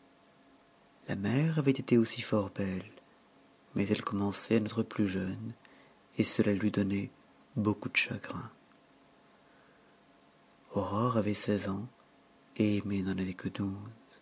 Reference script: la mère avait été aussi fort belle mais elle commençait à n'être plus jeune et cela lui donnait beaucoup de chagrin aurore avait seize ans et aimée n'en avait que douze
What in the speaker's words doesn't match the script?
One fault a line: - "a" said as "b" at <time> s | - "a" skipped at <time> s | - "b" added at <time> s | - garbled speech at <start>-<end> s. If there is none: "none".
none